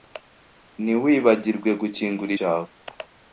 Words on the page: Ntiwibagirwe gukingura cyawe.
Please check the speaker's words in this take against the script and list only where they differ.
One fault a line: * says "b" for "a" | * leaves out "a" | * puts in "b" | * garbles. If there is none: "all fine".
all fine